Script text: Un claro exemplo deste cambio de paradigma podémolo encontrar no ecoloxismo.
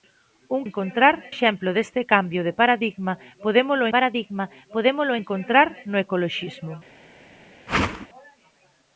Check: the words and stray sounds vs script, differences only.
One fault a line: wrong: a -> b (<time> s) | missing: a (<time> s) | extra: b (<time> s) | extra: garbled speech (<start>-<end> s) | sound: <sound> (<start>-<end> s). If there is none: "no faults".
wrong: claro -> encontrar (0.7 s)
extra: paradigma podémolo (3.9 s)
sound: whoosh (7.7-8.1 s)